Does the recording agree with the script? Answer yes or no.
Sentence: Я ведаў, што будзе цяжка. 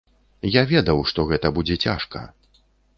no